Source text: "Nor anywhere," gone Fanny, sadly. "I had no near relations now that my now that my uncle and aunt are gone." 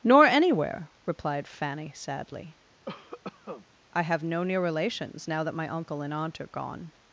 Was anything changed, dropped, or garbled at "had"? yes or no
yes